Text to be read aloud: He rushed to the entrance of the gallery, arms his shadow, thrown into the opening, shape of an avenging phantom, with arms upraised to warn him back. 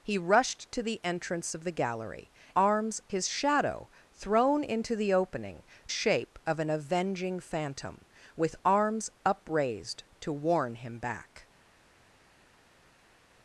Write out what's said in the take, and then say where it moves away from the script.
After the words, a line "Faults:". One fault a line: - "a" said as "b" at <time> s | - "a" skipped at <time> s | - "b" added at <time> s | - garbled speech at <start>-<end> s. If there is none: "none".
He rushed to the entrance of the gallery, arms his shadow, thrown into the opening, shape of an avenging phantom, with arms upraised to warn him back.
Faults:
none